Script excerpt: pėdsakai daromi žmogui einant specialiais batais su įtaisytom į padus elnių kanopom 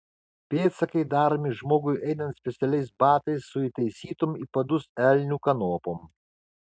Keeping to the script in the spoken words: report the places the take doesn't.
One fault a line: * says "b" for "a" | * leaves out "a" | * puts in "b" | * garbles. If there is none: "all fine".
all fine